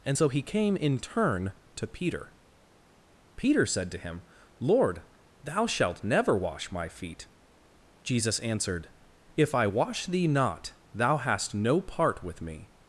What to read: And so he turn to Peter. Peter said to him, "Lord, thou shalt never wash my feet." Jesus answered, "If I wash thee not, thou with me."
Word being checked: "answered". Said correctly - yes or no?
yes